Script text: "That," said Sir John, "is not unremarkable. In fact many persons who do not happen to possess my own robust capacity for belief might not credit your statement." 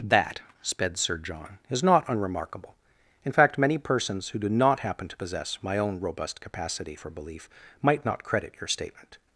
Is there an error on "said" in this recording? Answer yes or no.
yes